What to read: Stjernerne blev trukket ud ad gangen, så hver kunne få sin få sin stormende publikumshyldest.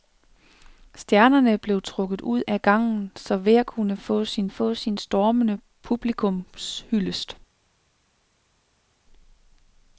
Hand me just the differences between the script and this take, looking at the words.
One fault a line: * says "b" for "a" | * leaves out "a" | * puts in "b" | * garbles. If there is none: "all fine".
all fine